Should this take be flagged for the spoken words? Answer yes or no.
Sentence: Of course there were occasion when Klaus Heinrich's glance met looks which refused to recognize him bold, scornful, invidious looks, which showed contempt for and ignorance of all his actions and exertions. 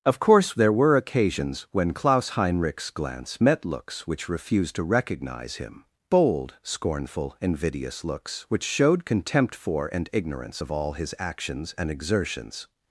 yes